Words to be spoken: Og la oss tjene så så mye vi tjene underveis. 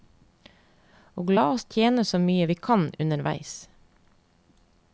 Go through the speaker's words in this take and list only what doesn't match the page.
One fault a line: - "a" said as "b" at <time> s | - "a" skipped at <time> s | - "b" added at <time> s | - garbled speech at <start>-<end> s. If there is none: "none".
- "så" skipped at 2.2 s
- "tjene" said as "kan" at 2.7 s